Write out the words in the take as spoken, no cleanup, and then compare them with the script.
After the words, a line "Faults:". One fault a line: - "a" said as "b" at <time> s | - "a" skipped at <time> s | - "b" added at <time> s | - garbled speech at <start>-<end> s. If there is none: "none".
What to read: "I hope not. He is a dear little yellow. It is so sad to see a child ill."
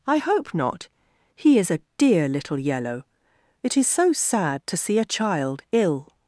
"I hope not. He is a dear little yellow. It is so sad to see a child ill."
Faults:
none